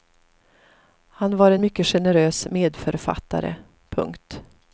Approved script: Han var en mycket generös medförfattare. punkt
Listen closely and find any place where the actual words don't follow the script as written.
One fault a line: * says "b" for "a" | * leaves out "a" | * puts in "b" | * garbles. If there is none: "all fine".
all fine